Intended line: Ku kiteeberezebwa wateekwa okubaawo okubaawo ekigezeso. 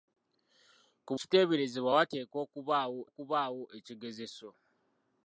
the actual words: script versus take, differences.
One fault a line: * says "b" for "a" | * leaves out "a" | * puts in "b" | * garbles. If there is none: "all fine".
all fine